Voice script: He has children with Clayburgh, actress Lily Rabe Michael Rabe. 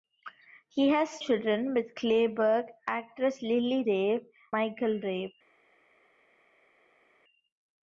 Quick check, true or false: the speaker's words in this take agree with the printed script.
true